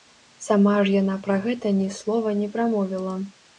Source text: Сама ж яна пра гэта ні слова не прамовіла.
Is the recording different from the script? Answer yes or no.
no